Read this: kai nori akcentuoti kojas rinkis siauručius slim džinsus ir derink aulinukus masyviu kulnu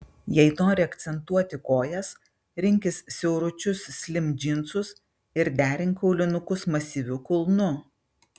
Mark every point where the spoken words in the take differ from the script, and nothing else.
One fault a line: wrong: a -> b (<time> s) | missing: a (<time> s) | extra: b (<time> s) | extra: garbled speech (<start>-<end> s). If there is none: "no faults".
wrong: kai -> jei (0.3 s)